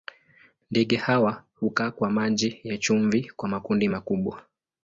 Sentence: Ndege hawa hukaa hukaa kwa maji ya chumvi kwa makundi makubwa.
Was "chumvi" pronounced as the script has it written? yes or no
yes